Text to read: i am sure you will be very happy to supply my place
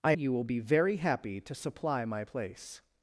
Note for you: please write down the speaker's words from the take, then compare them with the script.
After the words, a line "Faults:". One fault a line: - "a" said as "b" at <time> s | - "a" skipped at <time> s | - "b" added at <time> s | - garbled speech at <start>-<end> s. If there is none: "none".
i you will be very happy to supply my place
Faults:
- "am sure" skipped at 0.1 s